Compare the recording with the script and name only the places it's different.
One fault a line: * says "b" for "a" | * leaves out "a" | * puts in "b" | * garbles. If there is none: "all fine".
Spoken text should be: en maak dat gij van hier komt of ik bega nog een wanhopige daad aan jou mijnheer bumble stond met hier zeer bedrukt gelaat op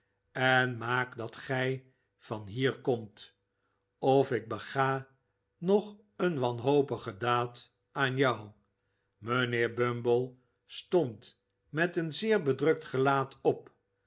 * says "een" for "hier"